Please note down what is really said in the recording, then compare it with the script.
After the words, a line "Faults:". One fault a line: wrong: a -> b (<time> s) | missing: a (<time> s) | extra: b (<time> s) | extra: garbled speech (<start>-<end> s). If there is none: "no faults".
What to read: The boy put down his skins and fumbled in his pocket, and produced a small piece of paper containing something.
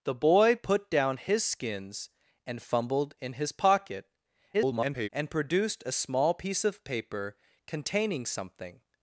The boy put down his skins and fumbled in his pocket, [garbled] and produced a small piece of paper containing something.
Faults:
extra: garbled speech (4.5-5.1 s)